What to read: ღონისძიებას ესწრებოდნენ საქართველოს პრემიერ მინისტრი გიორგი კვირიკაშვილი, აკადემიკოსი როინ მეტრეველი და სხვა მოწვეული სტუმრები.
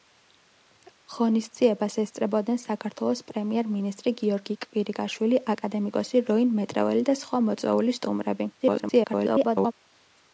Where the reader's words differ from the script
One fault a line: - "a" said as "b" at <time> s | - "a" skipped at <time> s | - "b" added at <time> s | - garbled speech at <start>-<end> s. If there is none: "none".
- garbled speech at 8.6-9.7 s